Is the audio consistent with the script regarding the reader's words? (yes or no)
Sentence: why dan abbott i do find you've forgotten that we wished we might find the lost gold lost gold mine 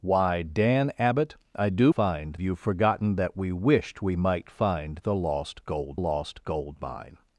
yes